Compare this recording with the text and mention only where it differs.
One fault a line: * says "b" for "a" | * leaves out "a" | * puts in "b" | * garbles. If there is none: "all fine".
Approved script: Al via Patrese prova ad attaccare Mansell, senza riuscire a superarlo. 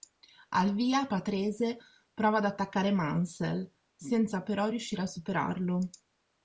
* puts in "però"